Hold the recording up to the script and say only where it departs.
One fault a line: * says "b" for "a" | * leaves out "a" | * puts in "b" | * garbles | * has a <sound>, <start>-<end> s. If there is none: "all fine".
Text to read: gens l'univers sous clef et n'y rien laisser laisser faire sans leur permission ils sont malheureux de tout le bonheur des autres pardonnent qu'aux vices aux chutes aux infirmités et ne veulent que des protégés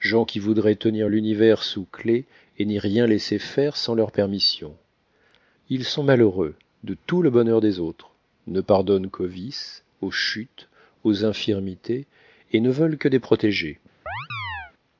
* puts in "qui voudraient tenir"
* leaves out "laisser"
* puts in "ne"
* has a chirp, 14.1-14.7 s